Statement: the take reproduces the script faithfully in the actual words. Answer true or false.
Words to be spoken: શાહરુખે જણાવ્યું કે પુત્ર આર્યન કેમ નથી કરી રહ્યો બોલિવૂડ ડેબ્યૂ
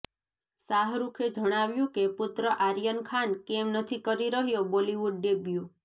false